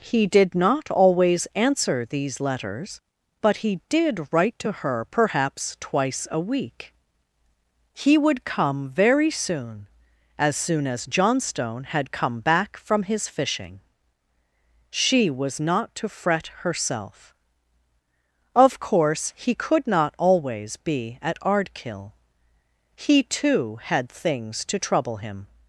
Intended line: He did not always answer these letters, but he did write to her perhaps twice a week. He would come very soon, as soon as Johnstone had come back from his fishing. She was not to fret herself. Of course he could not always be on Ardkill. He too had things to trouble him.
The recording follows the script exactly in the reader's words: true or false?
false